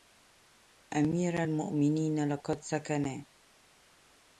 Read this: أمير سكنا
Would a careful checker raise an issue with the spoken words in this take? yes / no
yes